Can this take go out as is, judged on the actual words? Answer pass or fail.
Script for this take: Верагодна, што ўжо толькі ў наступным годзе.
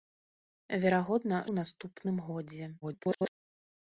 fail